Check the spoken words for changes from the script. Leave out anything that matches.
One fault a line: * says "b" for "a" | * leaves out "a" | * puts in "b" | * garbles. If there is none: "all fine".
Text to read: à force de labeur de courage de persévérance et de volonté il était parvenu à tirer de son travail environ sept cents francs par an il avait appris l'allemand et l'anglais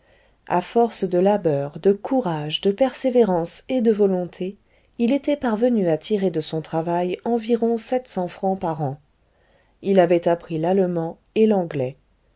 all fine